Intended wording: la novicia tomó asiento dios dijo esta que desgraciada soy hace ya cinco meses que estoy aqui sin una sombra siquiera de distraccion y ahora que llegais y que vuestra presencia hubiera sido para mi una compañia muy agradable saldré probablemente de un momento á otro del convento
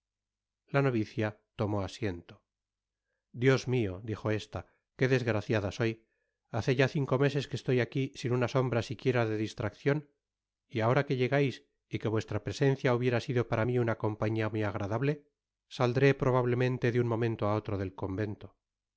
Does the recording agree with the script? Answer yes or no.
no